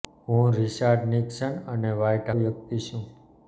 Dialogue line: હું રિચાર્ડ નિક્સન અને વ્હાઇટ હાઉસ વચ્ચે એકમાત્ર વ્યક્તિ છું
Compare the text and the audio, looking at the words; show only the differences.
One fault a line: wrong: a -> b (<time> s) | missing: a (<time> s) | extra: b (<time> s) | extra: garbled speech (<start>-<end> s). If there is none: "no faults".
missing: હાઉસ વચ્ચે એકમાત્ર (2.3 s)